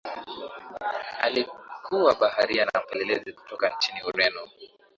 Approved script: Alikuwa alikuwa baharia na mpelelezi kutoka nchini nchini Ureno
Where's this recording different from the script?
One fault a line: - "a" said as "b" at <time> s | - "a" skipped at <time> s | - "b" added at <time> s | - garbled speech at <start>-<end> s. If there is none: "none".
- "alikuwa" skipped at 2.1 s
- "nchini" skipped at 4.0 s